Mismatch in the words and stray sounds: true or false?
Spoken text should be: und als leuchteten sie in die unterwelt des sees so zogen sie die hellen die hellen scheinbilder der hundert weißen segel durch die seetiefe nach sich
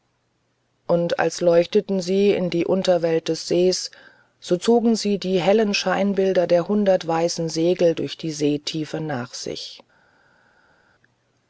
true